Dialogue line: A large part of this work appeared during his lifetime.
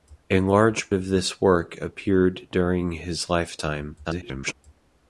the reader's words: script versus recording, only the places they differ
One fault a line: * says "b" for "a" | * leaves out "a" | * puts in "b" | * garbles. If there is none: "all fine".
* leaves out "part"
* garbles